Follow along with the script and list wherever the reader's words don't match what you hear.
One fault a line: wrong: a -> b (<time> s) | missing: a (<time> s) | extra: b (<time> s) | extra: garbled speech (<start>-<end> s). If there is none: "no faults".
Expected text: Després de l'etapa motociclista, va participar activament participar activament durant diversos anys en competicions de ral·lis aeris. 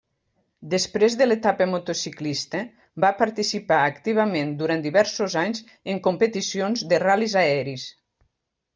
missing: participar activament (4.6 s)